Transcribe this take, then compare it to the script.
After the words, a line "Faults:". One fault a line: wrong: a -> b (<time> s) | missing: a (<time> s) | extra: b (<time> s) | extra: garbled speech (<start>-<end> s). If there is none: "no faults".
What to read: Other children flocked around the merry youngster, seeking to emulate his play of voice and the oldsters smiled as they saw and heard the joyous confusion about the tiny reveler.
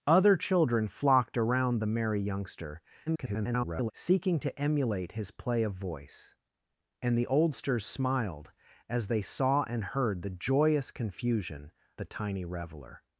Other children flocked around the merry youngster, [garbled] seeking to emulate his play of voice and the oldsters smiled as they saw and heard the joyous confusion the tiny reveler.
Faults:
extra: garbled speech (3.1-3.9 s)
missing: about (11.7 s)